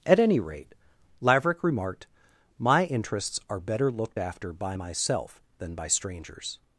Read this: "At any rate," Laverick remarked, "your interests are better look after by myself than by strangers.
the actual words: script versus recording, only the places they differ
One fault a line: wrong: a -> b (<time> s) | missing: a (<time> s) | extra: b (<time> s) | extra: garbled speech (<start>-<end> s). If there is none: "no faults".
wrong: your -> my (2.6 s)
wrong: look -> looked (3.9 s)